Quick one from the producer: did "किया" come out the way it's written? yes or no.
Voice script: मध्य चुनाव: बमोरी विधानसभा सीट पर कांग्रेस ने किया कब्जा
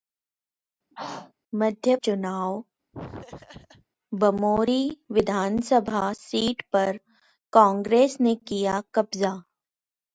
yes